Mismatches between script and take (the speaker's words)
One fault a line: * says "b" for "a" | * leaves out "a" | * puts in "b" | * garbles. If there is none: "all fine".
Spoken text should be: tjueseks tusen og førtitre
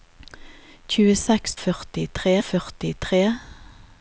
* says "førtitre" for "tusen"